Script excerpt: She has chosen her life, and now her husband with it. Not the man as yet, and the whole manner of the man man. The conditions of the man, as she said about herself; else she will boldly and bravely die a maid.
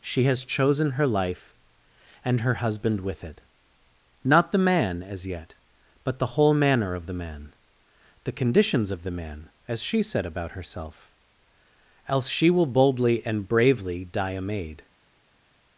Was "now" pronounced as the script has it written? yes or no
no